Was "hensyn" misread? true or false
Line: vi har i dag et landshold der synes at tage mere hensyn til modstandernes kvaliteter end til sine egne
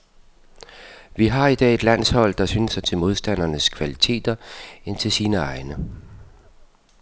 true